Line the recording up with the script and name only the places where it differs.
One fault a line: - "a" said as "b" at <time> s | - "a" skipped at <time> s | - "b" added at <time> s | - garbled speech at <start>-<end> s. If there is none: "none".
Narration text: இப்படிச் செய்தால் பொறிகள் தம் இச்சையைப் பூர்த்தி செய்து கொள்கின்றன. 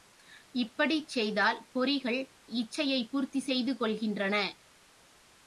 - "தம்" skipped at 2.2 s